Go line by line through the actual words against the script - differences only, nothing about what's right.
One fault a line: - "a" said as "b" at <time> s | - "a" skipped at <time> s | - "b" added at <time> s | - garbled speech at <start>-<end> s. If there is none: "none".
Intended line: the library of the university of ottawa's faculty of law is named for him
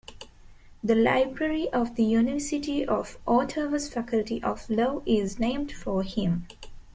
none